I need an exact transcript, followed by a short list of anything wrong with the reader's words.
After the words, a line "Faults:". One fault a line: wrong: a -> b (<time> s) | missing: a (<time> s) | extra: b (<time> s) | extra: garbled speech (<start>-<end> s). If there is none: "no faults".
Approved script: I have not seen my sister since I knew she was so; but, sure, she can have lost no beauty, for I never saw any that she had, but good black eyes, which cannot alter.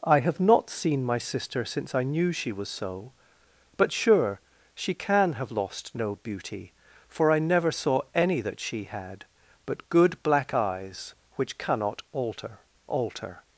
I have not seen my sister since I knew she was so; but, sure, she can have lost no beauty, for I never saw any that she had, but good black eyes, which cannot alter alter.
Faults:
extra: alter (12.9 s)